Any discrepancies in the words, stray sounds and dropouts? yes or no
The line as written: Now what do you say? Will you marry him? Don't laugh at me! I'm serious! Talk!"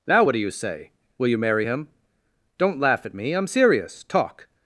no